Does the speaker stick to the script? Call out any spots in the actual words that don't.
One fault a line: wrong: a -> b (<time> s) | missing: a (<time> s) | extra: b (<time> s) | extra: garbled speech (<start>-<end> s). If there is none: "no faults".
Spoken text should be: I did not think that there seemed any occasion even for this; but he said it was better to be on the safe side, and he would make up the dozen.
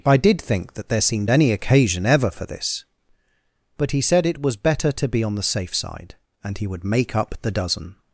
missing: not (0.4 s)
wrong: even -> ever (2.1 s)